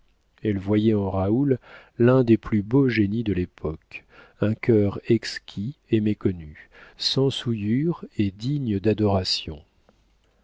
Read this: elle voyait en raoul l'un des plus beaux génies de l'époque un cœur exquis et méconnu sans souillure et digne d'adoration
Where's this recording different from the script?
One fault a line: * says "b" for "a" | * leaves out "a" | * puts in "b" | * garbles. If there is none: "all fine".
all fine